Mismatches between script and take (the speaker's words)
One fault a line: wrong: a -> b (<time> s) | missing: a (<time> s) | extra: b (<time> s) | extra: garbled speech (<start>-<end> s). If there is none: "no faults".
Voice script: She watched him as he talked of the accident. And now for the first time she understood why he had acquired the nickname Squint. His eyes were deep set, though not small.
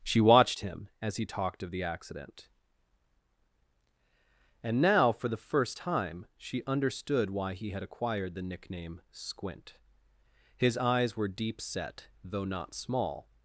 no faults